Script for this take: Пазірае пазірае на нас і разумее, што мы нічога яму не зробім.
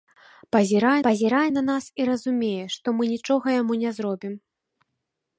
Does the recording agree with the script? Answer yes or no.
yes